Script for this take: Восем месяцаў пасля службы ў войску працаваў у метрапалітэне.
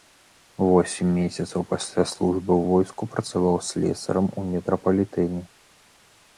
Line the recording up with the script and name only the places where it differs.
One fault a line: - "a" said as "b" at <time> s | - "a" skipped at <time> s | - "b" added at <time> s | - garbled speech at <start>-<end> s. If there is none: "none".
- "слесарам" added at 3.7 s